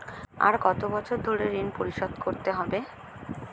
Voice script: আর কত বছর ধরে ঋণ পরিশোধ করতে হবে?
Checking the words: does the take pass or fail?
pass